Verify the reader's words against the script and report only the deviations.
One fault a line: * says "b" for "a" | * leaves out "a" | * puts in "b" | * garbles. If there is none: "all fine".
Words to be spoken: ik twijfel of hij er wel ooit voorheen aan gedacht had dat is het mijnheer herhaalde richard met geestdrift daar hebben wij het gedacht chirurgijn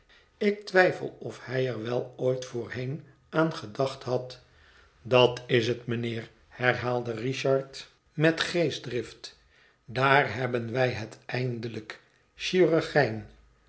* says "eindelijk" for "gedacht"